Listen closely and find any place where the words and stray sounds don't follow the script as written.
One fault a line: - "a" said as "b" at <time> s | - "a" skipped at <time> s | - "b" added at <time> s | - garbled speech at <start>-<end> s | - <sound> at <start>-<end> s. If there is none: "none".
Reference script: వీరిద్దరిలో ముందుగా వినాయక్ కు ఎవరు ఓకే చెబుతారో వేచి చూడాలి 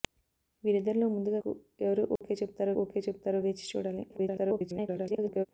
- "వినాయక్" skipped at 1.4 s
- dropout at 2.2-2.2 s
- "ఓకే చెబుతారో" added at 2.8 s
- garbled speech at 4.1-5.5 s